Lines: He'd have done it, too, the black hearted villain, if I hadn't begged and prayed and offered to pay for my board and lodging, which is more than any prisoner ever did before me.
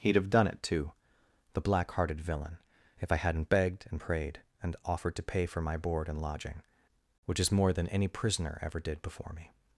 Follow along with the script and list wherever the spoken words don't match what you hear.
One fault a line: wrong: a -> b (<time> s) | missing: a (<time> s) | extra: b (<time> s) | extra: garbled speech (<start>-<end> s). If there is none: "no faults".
no faults